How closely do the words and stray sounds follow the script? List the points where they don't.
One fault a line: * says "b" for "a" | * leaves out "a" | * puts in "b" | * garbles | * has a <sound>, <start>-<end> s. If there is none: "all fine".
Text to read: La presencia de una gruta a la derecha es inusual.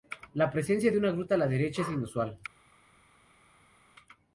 all fine